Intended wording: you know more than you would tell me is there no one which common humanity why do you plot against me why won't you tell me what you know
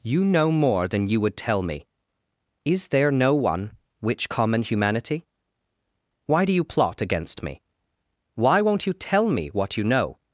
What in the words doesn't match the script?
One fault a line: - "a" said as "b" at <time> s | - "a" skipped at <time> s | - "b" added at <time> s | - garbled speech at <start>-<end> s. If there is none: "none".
none